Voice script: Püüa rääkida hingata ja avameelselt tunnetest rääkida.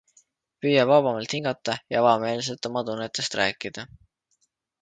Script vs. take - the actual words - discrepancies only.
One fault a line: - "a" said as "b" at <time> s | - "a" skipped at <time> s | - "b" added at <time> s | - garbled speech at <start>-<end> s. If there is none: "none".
- "rääkida" said as "vabamalt" at 0.9 s
- "oma" added at 2.7 s